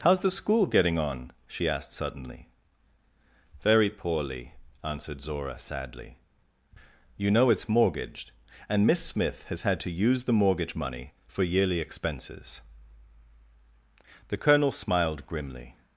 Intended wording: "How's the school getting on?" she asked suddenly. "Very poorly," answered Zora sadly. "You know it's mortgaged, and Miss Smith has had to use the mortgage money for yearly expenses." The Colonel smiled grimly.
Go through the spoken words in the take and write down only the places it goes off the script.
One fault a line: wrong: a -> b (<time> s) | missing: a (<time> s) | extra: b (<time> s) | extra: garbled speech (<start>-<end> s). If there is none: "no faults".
no faults